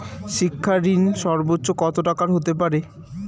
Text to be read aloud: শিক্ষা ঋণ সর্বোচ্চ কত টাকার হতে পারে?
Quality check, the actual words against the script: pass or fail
pass